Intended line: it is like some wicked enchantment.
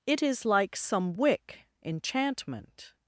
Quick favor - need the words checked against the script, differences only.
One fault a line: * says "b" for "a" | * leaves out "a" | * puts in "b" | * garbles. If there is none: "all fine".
* says "wick" for "wicked"